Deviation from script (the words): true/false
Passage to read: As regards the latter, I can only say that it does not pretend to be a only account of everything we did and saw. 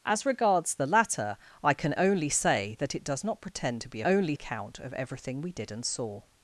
false